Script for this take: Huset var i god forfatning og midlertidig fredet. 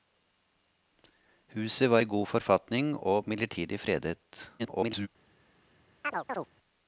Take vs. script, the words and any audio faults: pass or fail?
fail